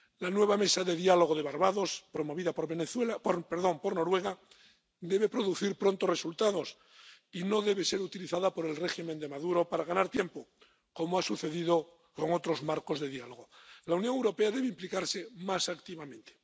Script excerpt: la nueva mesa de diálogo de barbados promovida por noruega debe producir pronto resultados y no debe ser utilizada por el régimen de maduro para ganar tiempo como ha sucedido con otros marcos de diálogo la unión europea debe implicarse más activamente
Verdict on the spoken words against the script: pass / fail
pass